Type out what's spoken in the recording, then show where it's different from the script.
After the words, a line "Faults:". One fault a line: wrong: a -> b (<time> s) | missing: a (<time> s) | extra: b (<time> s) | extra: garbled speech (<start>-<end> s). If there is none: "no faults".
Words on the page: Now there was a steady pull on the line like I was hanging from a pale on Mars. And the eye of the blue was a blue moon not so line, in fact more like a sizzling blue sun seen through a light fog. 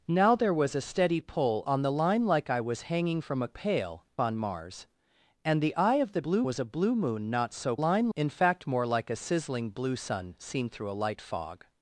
Now there was a steady pull on the line like I was hanging from a pale on Mars. And the eye of the blue was a blue moon not so line, in fact more like a sizzling blue sun seen through a light fog.
Faults:
no faults